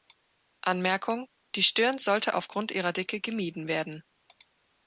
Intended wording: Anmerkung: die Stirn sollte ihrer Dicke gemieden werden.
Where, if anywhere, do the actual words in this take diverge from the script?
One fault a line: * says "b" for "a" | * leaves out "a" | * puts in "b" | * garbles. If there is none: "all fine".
* puts in "aufgrund"